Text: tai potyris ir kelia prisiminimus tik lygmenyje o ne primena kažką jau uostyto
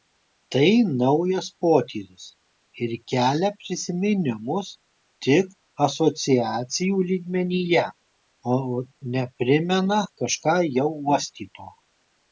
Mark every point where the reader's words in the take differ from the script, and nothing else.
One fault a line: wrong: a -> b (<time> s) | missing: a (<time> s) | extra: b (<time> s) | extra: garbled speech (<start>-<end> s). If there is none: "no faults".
extra: naujas (1.0 s)
extra: asociacijų (5.9 s)